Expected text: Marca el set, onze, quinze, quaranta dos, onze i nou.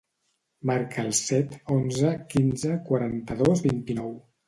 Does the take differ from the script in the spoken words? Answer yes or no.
yes